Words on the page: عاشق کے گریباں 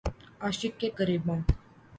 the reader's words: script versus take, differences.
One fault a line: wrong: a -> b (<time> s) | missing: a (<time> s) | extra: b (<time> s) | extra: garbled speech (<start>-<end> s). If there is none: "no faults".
no faults